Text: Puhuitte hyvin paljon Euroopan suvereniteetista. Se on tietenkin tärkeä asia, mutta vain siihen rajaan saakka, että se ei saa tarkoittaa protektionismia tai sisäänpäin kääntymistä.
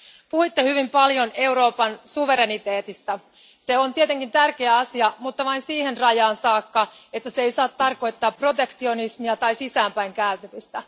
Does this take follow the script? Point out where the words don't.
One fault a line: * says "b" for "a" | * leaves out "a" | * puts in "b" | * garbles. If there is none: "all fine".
all fine